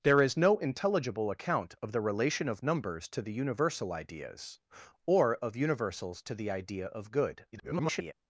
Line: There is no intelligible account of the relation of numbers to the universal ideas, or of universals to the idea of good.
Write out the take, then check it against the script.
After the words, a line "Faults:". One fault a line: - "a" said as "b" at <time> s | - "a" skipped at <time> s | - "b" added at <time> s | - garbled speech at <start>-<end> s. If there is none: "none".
There is no intelligible account of the relation of numbers to the universal ideas, or of universals to the idea of good. [garbled]
Faults:
- garbled speech at 7.5-8.1 s